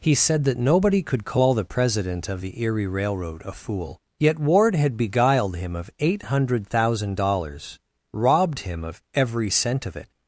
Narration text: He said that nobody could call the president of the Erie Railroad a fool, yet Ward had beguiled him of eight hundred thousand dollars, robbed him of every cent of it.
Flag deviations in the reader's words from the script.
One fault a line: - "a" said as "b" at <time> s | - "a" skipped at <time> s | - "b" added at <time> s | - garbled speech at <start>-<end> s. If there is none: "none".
none